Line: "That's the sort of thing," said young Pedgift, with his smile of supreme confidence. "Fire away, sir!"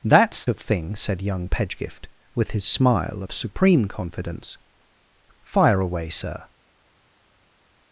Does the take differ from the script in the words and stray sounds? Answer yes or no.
yes